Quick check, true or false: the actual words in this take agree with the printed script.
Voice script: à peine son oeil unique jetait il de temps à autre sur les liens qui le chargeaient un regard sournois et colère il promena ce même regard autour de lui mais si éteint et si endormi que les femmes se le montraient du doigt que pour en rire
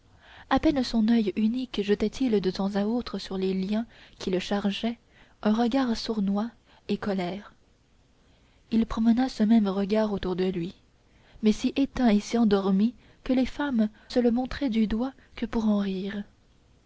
true